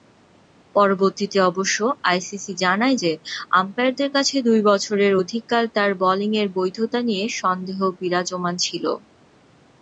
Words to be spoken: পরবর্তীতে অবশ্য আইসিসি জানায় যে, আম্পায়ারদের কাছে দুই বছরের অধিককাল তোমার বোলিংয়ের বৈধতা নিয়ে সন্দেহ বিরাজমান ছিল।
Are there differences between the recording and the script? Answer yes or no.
yes